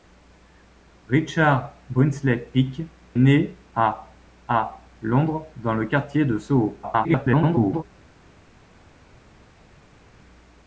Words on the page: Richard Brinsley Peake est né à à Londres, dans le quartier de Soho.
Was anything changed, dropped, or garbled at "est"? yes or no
yes